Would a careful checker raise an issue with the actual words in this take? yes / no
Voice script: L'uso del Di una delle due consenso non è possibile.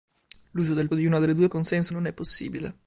no